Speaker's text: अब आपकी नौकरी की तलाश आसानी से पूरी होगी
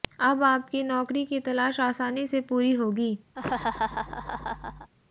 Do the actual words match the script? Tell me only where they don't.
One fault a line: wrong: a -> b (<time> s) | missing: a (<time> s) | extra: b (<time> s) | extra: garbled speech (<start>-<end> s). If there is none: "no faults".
no faults